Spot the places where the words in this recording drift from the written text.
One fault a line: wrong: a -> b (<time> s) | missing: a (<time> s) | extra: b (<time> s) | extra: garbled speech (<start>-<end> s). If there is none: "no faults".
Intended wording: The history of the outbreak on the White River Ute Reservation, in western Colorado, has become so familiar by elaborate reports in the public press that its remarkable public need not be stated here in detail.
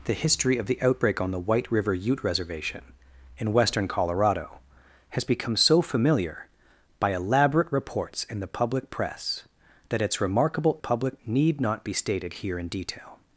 no faults